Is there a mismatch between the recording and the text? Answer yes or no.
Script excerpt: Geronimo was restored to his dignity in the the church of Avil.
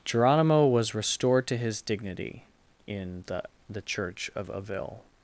no